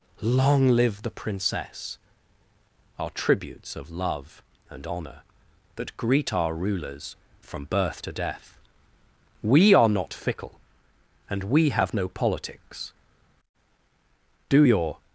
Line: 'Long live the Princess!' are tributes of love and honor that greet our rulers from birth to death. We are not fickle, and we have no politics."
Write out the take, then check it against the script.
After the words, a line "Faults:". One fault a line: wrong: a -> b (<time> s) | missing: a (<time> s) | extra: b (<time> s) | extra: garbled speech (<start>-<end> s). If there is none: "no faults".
'Long live the Princess!' are tributes of love and honor that greet our rulers from birth to death. We are not fickle, and we have no politics." "Do your
Faults:
extra: Do your (14.5 s)